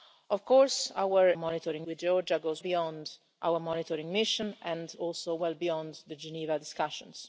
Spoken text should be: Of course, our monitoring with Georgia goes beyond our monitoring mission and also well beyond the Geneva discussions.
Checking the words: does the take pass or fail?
pass